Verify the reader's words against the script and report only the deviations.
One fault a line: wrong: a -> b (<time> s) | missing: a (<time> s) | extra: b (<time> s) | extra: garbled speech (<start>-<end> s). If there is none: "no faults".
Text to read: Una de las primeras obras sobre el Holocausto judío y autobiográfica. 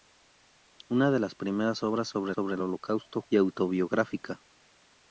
extra: sobre (2.3 s)
missing: judío (3.2 s)